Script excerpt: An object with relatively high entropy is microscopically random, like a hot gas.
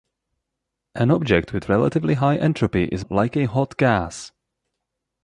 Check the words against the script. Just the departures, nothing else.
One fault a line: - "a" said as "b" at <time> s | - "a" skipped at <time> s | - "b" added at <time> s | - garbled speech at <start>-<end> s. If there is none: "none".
- "microscopically random" skipped at 3.0 s